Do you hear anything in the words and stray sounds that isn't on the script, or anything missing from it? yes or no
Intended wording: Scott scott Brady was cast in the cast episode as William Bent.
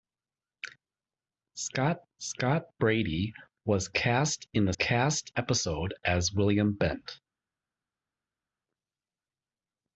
no